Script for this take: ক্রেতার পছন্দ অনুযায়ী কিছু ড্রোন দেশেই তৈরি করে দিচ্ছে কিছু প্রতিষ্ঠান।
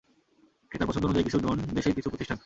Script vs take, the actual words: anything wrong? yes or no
yes